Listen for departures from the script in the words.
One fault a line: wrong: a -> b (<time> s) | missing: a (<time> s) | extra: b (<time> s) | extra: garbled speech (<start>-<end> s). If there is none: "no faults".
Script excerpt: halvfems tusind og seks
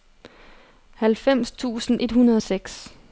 extra: et hundrede (2.0 s)